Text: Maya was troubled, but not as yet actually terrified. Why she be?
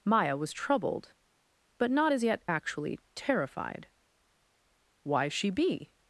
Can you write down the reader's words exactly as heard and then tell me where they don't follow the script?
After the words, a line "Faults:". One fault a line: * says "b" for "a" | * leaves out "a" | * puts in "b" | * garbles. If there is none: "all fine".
Maya was troubled, but not as yet actually terrified. Why she be?
Faults:
all fine